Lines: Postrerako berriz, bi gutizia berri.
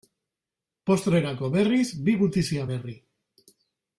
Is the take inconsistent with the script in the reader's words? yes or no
no